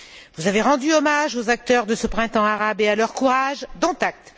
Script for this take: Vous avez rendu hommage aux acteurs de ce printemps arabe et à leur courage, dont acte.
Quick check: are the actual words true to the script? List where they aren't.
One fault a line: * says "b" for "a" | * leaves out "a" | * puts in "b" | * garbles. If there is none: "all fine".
all fine